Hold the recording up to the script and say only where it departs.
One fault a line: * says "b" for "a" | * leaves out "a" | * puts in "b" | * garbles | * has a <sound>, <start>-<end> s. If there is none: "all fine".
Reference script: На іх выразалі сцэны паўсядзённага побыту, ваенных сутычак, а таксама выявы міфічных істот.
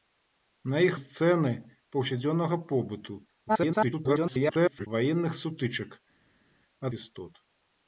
* leaves out "выразалі"
* garbles
* leaves out "таксама выявы міфічных"